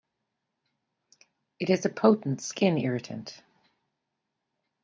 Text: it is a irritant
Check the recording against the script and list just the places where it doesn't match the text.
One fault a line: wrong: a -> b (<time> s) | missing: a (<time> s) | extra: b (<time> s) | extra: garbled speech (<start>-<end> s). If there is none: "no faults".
extra: potent skin (1.9 s)